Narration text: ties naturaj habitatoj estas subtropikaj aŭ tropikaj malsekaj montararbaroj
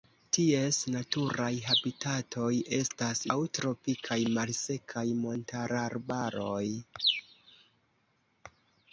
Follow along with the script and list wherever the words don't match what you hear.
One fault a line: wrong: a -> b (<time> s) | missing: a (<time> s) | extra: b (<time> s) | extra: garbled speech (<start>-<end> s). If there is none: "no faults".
missing: subtropikaj (3.2 s)